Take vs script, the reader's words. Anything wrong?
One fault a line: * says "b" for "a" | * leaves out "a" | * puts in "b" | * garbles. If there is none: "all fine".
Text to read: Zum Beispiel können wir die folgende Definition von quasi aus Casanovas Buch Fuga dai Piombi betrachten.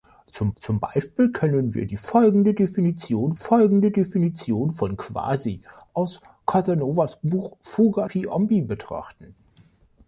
* puts in "zum"
* puts in "folgende Definition"
* leaves out "dai"